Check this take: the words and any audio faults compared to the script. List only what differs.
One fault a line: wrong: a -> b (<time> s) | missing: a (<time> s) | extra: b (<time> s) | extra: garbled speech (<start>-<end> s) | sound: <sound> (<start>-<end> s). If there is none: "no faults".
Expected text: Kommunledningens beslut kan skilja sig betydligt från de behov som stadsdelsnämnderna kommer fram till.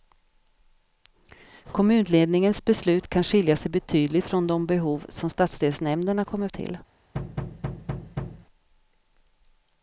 missing: fram (6.5 s)
sound: thud (7.1-8.5 s)